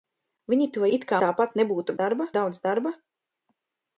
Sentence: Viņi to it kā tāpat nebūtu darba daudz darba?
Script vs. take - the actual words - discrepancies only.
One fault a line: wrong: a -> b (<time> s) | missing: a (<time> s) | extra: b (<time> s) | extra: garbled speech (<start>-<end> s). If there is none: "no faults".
no faults